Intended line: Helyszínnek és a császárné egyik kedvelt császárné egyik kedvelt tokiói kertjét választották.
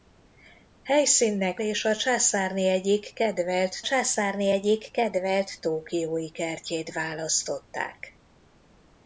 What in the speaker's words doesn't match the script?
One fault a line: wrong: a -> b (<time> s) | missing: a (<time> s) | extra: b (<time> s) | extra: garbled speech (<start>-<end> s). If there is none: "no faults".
no faults